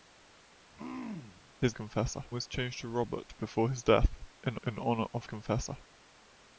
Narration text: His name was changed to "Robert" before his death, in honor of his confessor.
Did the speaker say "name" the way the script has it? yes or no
no